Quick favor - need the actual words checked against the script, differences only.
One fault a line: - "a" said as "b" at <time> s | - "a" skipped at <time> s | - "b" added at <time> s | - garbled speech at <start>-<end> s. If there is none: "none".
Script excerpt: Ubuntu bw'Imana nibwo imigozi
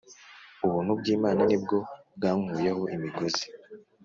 - "bwankuyeho" added at 2.2 s